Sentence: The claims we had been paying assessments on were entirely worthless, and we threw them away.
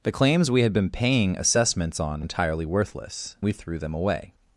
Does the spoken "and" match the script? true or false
false